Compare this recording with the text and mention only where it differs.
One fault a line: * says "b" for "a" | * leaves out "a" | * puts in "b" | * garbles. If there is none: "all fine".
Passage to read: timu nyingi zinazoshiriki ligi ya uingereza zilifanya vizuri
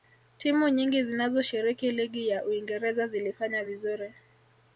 all fine